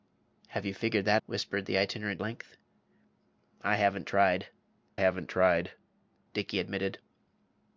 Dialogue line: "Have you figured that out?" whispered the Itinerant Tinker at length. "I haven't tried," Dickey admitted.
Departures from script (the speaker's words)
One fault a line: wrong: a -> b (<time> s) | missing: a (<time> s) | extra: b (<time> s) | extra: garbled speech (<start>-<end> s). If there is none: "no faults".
missing: out (1.2 s)
wrong: Tinker at length I -> Length I haven't tried (2.2 s)